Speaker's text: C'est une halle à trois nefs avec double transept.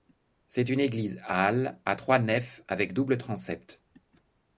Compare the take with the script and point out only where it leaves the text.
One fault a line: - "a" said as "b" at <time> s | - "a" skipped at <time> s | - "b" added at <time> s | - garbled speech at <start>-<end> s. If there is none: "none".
- "église" added at 0.8 s